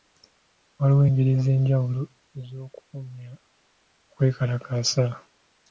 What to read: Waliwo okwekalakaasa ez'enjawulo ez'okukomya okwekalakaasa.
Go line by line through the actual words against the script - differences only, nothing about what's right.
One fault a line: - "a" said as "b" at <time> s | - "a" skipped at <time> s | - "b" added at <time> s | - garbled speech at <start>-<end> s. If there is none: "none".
- "okwekalakaasa" said as "engeri" at 1.1 s